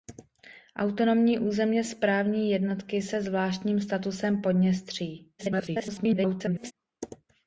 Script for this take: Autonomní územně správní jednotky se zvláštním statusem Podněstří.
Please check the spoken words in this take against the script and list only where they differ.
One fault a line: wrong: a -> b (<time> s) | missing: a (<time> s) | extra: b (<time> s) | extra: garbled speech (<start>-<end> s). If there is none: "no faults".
extra: garbled speech (5.4-6.7 s)